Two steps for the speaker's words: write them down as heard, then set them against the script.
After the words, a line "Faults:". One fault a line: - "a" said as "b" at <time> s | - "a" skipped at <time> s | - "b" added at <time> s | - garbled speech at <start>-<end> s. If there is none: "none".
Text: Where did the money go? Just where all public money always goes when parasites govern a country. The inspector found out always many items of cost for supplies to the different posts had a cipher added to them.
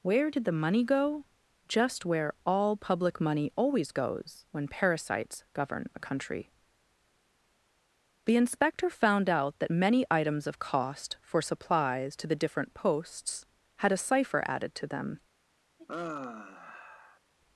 Where did the money go? Just where all public money always goes when parasites govern a country. The inspector found out that many items of cost for supplies to the different posts had a cipher added to them.
Faults:
- "always" said as "that" at 9.6 s